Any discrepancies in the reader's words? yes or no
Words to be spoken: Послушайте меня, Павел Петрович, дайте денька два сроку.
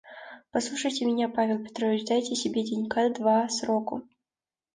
yes